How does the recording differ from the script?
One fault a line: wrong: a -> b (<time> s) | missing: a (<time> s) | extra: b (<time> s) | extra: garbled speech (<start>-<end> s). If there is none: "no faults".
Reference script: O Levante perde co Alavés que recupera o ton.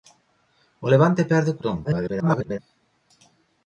missing: Alavés que recupera (1.6 s)
extra: garbled speech (1.8-2.6 s)